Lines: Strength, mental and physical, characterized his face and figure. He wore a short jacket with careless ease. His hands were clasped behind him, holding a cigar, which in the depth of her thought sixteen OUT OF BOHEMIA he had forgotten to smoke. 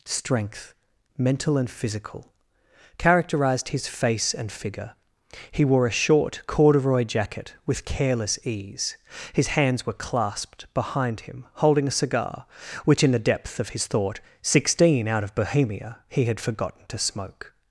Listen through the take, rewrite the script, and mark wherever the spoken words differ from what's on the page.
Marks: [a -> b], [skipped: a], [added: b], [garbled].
Strength, mental and physical, characterized his face and figure. He wore a short [added: corduroy] jacket with careless ease. His hands were clasped behind him, holding a cigar, which in the depth of [her -> his] thought sixteen OUT OF BOHEMIA he had forgotten to smoke.